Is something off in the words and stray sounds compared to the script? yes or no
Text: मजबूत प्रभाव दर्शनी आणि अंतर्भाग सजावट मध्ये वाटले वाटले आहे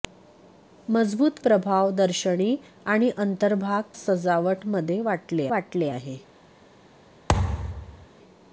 yes